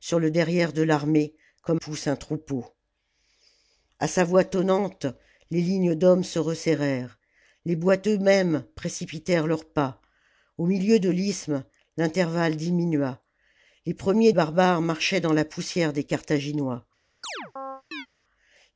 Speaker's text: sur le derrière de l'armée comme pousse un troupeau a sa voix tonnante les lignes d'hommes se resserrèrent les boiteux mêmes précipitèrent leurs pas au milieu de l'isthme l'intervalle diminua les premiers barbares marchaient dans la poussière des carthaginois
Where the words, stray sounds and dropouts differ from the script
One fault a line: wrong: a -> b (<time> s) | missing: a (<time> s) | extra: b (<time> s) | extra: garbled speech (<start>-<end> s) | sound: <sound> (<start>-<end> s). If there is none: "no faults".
sound: chirp (17.2-18.1 s)